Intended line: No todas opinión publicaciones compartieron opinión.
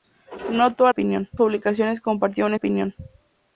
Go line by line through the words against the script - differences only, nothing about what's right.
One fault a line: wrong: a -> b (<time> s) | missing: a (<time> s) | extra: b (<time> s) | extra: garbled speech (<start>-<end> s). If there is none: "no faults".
no faults